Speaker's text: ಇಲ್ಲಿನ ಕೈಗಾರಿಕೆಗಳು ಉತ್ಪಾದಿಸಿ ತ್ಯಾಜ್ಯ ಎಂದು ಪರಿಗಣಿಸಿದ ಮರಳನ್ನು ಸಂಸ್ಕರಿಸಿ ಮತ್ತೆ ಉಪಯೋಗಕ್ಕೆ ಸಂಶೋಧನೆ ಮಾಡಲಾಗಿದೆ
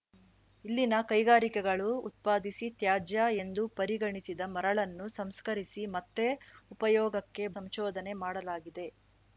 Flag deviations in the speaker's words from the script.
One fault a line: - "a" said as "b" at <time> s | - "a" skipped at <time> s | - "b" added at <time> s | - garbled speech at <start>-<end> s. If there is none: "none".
none